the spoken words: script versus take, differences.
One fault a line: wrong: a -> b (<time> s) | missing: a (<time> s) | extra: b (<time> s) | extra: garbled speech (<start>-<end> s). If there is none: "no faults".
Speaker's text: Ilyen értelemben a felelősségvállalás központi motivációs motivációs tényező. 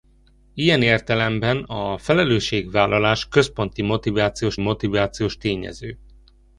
no faults